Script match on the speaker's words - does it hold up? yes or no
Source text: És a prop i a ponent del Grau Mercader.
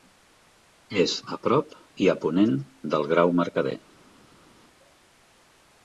yes